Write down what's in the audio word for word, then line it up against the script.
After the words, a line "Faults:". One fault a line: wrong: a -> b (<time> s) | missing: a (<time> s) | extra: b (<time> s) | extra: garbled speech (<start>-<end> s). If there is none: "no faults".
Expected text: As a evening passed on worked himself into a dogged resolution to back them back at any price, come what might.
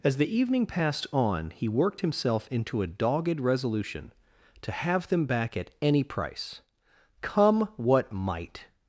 As the evening passed on he worked himself into a dogged resolution to have them back at any price, come what might.
Faults:
wrong: a -> the (0.2 s)
extra: he (1.5 s)
wrong: back -> have (4.7 s)